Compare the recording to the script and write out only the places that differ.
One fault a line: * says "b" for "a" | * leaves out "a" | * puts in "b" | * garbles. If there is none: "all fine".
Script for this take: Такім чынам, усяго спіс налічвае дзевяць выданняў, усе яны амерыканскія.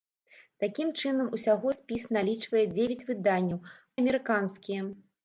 * leaves out "усе яны"